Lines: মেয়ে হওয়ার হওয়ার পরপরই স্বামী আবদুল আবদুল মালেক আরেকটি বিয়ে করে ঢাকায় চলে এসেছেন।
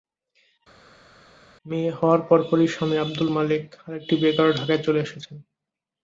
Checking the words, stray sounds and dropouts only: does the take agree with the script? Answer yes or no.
no